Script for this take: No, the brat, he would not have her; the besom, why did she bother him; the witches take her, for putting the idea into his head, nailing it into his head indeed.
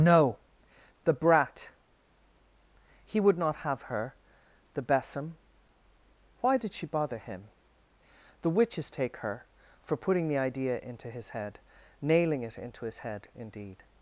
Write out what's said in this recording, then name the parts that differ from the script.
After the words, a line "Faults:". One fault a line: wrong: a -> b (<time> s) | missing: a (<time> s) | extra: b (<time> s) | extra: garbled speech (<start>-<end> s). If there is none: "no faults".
No, the brat, he would not have her; the besom, why did she bother him; the witches take her, for putting the idea into his head, nailing it into his head indeed.
Faults:
no faults